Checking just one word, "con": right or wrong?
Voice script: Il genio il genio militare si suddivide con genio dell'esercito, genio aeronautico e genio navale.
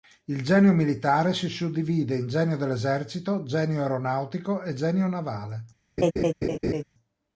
wrong